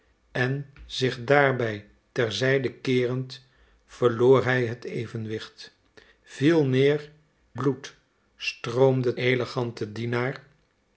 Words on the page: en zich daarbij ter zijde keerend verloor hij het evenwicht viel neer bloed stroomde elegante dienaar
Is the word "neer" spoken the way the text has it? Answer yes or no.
yes